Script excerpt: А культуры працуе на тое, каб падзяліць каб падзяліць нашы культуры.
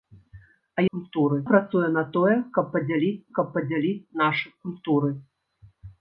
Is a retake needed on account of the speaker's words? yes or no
no